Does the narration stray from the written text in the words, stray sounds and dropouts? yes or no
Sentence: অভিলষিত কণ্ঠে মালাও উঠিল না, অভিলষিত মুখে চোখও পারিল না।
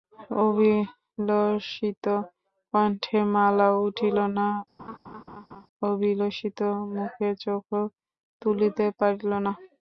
yes